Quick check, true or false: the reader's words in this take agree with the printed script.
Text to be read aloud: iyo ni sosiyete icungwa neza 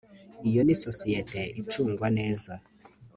true